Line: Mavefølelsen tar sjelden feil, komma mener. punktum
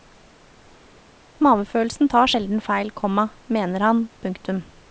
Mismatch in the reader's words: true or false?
true